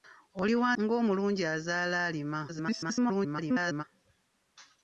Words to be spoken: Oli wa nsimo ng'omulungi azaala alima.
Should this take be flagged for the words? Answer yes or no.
yes